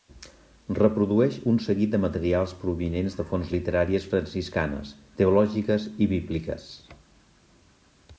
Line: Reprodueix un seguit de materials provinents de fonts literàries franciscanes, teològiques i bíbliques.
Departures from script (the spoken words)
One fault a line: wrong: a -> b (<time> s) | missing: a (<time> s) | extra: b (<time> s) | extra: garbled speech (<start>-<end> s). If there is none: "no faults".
no faults